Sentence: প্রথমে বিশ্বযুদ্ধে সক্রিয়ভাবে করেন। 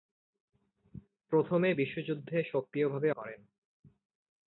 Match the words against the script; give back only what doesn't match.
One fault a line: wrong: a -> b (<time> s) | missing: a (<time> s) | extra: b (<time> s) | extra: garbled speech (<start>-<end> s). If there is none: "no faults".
no faults